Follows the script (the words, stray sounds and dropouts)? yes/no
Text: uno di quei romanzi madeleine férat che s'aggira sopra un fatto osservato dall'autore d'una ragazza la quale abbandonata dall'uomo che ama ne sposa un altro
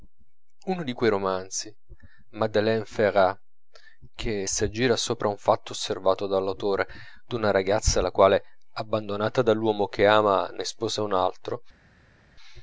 yes